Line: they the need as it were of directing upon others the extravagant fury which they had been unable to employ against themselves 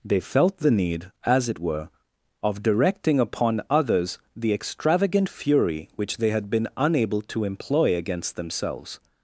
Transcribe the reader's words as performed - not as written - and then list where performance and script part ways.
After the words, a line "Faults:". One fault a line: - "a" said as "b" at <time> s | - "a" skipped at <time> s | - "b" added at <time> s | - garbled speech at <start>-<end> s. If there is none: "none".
they felt the need as it were of directing upon others the extravagant fury which they had been unable to employ against themselves
Faults:
- "felt" added at 0.2 s